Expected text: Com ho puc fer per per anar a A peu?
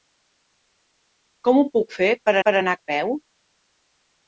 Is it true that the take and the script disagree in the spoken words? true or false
false